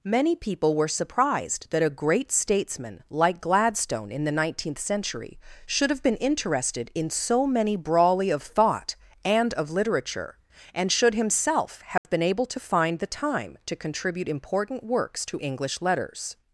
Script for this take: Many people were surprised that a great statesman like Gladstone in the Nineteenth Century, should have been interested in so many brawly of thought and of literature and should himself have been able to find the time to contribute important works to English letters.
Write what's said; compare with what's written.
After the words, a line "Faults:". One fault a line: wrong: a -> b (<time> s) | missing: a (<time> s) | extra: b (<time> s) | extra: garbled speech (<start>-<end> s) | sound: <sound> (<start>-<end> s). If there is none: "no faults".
Many people were surprised that a great statesman like Gladstone in the Nineteenth Century, should have been interested in so many brawly of thought and of literature and should himself have been able to find the time to contribute important works to English letters.
Faults:
sound: dropout (12.0-12.0 s)